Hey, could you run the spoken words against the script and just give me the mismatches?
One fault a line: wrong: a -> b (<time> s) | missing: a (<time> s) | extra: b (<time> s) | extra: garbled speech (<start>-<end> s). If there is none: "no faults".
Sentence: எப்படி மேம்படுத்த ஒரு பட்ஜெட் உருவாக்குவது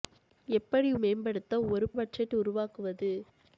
no faults